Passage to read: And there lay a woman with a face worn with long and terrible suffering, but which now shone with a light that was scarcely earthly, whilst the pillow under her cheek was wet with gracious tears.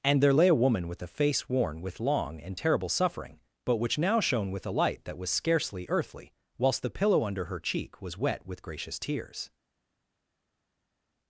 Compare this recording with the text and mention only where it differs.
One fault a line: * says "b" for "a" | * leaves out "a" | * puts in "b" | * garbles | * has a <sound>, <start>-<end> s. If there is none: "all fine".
all fine